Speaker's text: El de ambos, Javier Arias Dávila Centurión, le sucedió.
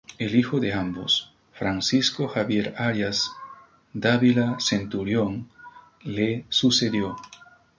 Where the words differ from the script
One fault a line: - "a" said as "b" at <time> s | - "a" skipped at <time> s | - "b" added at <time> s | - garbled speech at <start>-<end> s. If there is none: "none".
- "hijo" added at 0.3 s
- "Francisco" added at 1.5 s